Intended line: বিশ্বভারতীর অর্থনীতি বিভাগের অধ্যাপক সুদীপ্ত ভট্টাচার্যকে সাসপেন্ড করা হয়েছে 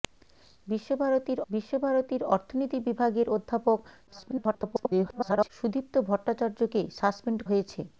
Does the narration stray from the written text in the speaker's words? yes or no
yes